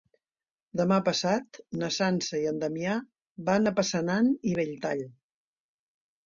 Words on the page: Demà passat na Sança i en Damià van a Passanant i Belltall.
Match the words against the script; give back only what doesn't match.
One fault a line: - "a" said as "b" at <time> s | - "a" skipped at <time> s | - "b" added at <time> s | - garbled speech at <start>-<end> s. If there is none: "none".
none